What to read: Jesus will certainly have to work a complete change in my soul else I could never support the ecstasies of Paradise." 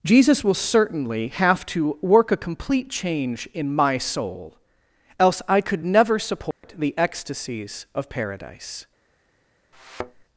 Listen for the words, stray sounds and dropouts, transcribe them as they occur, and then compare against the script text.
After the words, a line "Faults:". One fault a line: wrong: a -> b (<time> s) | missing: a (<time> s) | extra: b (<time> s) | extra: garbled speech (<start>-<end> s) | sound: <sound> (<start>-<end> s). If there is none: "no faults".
Jesus will certainly have to work a complete change in my soul else I could never support the ecstasies of Paradise."
Faults:
sound: dropout (6.5-6.6 s)
sound: thud (9.7-10.2 s)